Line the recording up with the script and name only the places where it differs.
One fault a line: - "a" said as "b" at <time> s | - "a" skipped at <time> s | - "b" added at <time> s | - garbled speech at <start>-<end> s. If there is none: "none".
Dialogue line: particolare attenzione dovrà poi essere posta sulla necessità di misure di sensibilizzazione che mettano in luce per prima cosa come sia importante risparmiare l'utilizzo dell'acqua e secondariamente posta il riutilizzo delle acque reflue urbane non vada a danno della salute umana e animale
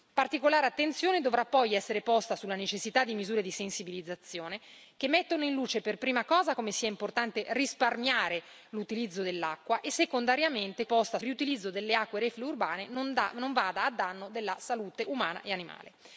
none